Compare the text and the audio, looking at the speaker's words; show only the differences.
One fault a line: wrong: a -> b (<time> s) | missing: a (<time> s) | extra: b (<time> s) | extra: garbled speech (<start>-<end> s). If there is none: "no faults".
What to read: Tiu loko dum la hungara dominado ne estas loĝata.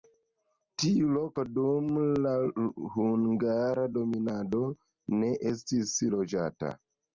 wrong: estas -> estis (5.5 s)